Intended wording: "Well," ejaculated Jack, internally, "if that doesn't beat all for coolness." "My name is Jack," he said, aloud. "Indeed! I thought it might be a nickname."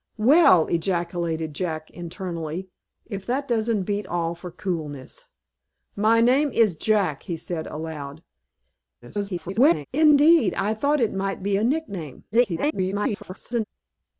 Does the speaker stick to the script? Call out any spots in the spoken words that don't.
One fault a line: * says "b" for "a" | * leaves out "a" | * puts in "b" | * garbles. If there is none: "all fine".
* garbles
* garbles